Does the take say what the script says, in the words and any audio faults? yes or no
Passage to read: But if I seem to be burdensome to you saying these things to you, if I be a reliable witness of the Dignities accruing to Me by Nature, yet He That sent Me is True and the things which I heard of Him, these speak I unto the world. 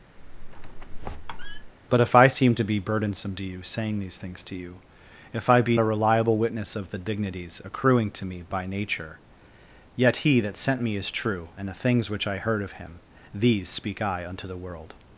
no